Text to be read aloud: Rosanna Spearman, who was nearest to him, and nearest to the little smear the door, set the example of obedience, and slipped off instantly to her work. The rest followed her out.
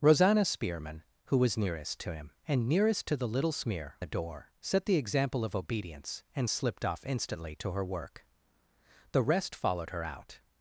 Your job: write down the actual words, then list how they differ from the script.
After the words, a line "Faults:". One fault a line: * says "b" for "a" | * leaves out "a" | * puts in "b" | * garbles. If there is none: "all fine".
Rosanna Spearman, who was nearest to him, and nearest to the little smear the door, set the example of obedience, and slipped off instantly to her work. The rest followed her out.
Faults:
all fine